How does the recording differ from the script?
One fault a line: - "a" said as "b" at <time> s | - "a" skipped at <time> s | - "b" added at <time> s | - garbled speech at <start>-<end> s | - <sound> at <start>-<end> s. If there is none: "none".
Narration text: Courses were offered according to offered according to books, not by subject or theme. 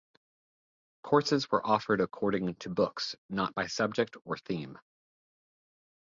- "offered according to" skipped at 2.7 s